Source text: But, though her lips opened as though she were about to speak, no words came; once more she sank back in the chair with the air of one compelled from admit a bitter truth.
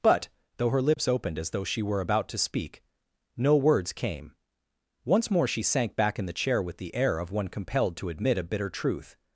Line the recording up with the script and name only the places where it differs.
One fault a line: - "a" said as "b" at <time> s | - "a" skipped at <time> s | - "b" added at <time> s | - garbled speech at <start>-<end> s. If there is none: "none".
- "from" said as "to" at 8.0 s